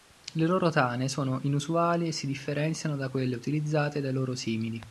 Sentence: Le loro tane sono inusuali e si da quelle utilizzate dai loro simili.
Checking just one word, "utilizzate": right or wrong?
right